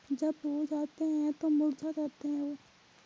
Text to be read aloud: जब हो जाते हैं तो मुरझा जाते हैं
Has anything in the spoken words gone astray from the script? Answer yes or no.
no